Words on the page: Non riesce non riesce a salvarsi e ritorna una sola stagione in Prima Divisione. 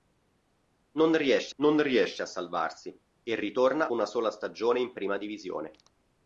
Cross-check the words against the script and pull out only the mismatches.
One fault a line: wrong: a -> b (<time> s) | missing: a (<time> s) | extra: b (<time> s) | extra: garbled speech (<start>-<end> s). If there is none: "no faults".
no faults